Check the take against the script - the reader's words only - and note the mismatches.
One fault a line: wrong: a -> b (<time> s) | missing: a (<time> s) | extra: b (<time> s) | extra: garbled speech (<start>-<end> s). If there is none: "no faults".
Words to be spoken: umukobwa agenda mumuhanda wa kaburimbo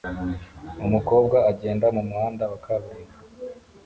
no faults